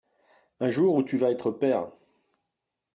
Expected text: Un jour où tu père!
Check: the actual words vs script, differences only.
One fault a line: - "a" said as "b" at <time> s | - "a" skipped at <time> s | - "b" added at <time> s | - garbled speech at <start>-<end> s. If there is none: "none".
- "vas être" added at 1.1 s